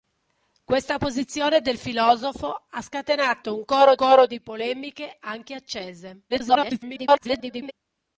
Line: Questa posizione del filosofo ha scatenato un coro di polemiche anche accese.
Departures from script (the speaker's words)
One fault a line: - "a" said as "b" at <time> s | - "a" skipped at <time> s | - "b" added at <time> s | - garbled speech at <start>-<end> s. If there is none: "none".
- "coro" added at 3.9 s
- garbled speech at 6.3-7.7 s